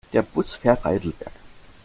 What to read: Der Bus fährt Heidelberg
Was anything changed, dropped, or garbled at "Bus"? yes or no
no